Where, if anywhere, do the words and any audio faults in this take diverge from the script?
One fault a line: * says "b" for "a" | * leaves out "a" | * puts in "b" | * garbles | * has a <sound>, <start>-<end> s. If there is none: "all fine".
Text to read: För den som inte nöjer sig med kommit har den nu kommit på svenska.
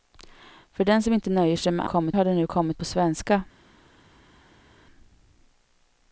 all fine